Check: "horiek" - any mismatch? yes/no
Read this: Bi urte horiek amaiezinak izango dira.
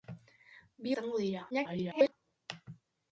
yes